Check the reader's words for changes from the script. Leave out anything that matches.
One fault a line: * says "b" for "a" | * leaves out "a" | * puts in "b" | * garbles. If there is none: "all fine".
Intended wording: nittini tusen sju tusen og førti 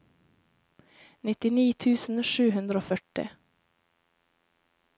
* says "hundre" for "tusen"